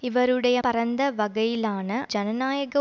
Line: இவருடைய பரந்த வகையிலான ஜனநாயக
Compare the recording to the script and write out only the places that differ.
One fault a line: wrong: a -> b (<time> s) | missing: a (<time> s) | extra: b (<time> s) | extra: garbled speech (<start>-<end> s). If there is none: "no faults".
no faults